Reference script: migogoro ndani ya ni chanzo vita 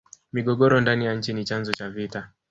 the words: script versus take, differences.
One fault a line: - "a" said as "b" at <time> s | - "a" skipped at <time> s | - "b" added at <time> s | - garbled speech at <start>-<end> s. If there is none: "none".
- "nchi" added at 1.1 s
- "cha" added at 1.7 s